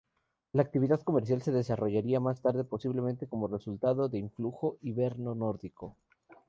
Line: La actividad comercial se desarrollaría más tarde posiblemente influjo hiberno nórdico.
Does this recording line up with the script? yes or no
no